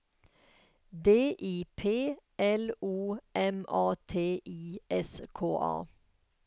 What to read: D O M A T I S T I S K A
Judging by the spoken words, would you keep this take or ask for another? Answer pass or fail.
fail